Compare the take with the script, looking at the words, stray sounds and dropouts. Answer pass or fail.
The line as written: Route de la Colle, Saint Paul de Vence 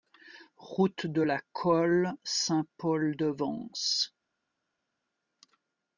pass